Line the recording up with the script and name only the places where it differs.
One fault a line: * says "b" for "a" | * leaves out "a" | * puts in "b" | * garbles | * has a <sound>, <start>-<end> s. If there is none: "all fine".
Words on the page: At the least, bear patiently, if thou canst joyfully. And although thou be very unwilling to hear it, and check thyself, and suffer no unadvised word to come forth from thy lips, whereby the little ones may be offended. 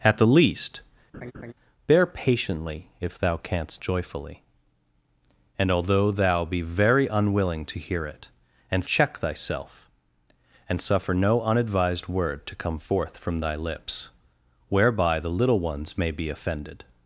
* has a laugh, 1.1-1.5 s